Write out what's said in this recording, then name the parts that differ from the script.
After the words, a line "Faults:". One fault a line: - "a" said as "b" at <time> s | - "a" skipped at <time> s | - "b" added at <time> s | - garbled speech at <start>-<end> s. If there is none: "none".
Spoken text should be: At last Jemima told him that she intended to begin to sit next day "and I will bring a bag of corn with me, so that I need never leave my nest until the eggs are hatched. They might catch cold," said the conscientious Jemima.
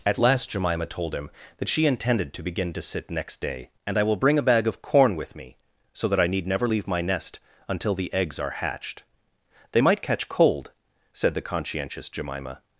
At last Jemima told him that she intended to begin to sit next day "and I will bring a bag of corn with me, so that I need never leave my nest until the eggs are hatched. They might catch cold," said the conscientious Jemima.
Faults:
none